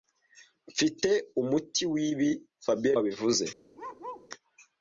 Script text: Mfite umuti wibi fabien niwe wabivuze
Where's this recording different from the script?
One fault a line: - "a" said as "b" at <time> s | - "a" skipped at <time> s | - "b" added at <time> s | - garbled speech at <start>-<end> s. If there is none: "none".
- "niwe" skipped at 3.0 s